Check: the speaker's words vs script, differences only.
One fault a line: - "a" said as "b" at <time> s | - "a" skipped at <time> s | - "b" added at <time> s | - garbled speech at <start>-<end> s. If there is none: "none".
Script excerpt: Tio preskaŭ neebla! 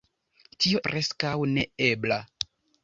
none